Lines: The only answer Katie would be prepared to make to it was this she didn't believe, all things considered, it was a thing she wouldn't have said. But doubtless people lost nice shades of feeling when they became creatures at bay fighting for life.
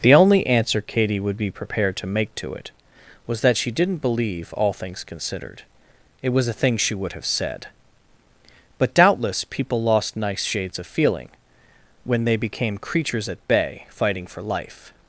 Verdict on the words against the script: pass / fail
fail